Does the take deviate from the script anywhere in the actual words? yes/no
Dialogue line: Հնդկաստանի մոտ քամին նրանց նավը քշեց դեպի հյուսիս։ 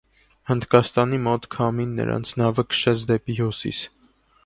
no